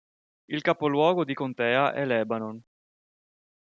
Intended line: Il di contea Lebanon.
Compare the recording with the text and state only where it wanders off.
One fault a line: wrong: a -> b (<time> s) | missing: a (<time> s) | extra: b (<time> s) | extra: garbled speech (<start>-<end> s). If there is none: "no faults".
extra: capoluogo (0.6 s)
extra: è (1.9 s)